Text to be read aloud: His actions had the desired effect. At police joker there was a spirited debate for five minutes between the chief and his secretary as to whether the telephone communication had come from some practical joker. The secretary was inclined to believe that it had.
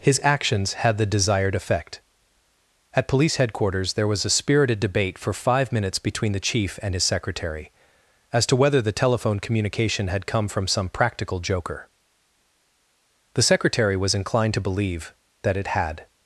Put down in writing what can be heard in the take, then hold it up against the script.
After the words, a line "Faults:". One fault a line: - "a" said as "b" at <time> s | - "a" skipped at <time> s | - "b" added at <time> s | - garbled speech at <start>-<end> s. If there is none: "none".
His actions had the desired effect. At police headquarters there was a spirited debate for five minutes between the chief and his secretary as to whether the telephone communication had come from some practical joker. The secretary was inclined to believe that it had.
Faults:
- "joker" said as "headquarters" at 3.4 s